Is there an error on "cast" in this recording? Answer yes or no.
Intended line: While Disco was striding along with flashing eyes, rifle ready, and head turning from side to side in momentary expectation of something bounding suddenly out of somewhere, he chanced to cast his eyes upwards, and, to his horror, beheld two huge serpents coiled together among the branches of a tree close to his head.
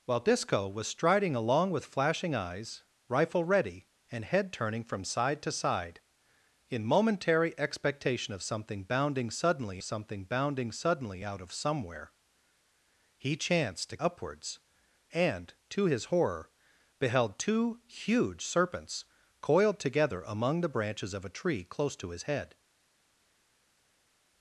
yes